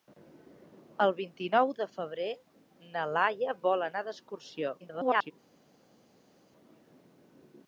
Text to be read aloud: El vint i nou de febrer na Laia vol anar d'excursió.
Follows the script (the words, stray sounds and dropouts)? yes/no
no